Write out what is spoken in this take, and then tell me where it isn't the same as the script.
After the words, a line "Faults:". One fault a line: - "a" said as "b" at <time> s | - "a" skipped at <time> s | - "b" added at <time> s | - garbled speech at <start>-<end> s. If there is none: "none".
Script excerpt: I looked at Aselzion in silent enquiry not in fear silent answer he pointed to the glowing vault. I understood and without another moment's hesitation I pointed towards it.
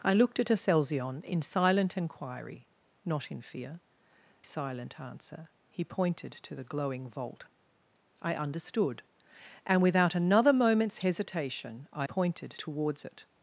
I looked at Aselzion in silent enquiry not in fear silent answer he pointed to the glowing vault. I understood and without another moment's hesitation I pointed towards it.
Faults:
none